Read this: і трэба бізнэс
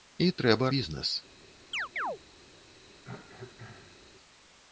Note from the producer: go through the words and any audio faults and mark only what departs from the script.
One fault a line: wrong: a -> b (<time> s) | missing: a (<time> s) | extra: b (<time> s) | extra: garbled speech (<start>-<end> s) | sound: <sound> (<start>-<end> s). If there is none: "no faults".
sound: chirp (1.7-2.2 s)
sound: cough (3.0-4.1 s)